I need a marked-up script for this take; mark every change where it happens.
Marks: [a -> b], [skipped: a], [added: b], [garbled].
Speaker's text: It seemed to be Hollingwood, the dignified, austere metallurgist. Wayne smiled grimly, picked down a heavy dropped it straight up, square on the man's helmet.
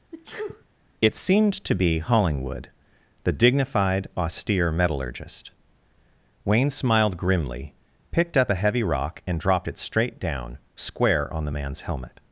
It seemed to be Hollingwood, the dignified, austere metallurgist. Wayne smiled grimly, picked [down -> up] a heavy [added: rock and] dropped it straight [up, -> down] square on the man's helmet.